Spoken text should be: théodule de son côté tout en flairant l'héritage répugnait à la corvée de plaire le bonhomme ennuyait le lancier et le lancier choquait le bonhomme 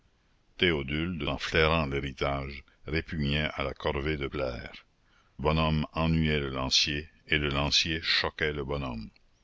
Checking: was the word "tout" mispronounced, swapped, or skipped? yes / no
yes